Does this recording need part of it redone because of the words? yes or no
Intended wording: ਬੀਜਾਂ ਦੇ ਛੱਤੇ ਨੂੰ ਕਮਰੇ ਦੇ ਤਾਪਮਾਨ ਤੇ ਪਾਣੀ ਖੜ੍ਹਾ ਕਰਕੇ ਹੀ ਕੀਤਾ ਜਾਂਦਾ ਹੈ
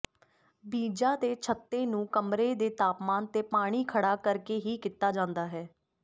no